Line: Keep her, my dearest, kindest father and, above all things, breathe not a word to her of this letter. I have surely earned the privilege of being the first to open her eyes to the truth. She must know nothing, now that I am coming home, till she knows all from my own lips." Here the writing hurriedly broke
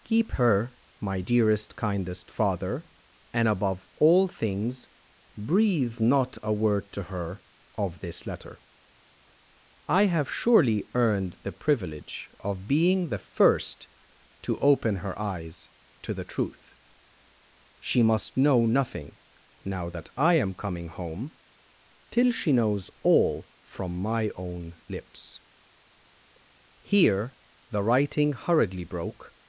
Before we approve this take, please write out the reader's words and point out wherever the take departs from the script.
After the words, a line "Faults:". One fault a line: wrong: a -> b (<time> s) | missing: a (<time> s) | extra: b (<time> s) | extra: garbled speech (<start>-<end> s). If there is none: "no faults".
Keep her, my dearest, kindest father and, above all things, breathe not a word to her of this letter. I have surely earned the privilege of being the first to open her eyes to the truth. She must know nothing, now that I am coming home, till she knows all from my own lips." Here the writing hurriedly broke
Faults:
no faults